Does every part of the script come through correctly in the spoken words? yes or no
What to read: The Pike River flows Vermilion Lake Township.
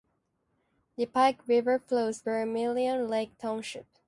yes